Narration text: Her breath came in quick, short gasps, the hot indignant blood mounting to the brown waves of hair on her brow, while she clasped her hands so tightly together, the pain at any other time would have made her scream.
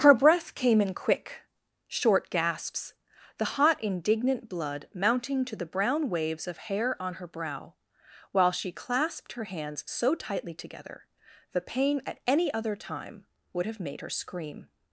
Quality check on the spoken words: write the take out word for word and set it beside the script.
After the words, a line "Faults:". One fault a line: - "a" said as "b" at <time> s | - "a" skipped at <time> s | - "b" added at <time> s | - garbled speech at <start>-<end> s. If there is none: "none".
Her breath came in quick, short gasps, the hot indignant blood mounting to the brown waves of hair on her brow, while she clasped her hands so tightly together, the pain at any other time would have made her scream.
Faults:
none